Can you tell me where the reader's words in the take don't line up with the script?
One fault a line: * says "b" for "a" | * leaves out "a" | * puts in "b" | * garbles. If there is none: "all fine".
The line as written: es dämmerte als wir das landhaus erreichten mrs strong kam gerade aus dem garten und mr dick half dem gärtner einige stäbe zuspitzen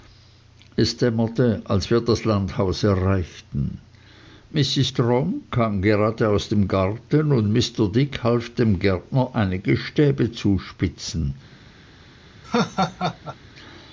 all fine